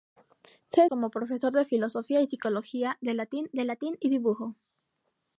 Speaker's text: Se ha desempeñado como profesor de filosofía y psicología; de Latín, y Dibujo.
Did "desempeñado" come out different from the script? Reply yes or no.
yes